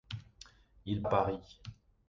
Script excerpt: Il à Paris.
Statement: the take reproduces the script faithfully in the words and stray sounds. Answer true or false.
true